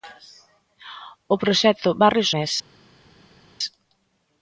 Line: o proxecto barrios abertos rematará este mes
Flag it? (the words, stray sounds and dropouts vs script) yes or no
yes